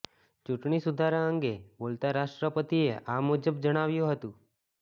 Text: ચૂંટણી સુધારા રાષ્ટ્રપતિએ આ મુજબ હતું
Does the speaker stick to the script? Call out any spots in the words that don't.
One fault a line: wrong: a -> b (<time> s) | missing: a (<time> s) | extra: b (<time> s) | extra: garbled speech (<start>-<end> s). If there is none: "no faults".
extra: અંગે બોલતા (1.2 s)
extra: જણાવ્યું (3.6 s)